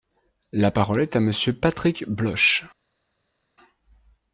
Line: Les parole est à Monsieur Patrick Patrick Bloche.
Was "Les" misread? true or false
true